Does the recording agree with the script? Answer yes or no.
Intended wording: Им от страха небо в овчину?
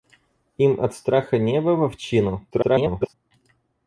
no